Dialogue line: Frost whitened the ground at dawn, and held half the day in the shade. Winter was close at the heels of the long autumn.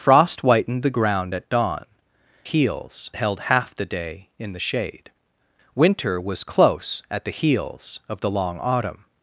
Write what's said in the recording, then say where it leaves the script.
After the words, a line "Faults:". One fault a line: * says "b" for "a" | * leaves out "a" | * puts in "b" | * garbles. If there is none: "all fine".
Frost whitened the ground at dawn, heels held half the day in the shade. Winter was close at the heels of the long autumn.
Faults:
* says "heels" for "and"